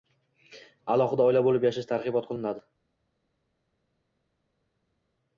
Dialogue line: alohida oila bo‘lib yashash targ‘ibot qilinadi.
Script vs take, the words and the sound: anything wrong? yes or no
no